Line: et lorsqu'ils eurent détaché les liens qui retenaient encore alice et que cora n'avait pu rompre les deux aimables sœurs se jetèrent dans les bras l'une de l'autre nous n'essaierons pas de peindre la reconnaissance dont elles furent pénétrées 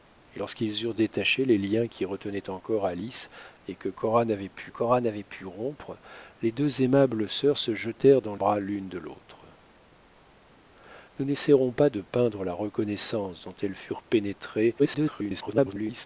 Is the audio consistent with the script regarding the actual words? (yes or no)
no